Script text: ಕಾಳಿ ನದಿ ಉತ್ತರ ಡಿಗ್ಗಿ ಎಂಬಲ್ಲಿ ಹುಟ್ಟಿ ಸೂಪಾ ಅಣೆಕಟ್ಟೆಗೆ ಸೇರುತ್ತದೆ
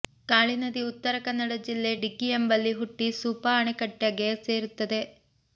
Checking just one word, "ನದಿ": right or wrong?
right